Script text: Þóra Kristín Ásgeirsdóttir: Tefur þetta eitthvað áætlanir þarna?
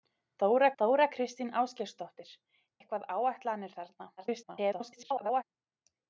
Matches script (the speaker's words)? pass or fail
fail